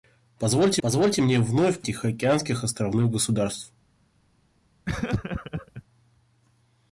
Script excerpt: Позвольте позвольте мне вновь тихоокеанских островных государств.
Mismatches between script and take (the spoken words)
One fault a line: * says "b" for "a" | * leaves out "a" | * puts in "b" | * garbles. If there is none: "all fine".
all fine